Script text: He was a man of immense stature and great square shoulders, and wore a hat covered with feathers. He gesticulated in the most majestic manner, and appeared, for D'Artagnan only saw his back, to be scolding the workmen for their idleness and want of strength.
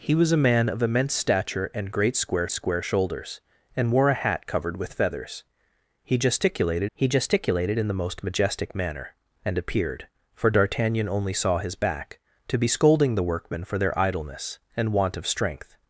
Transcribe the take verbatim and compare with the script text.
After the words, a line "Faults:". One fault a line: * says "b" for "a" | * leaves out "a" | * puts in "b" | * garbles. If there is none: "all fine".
He was a man of immense stature and great square square shoulders, and wore a hat covered with feathers. He gesticulated he gesticulated in the most majestic manner, and appeared, for D'Artagnan only saw his back, to be scolding the workmen for their idleness and want of strength.
Faults:
* puts in "square"
* puts in "he gesticulated"